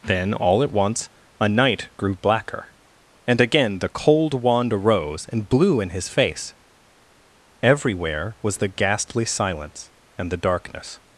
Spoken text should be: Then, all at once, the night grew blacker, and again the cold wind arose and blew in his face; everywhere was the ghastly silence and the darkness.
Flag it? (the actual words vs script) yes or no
yes